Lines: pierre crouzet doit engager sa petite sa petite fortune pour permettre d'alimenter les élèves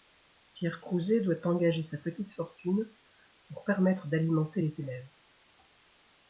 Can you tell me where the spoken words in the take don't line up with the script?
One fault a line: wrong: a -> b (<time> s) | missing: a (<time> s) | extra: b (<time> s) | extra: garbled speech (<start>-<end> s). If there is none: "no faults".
missing: sa petite (2.3 s)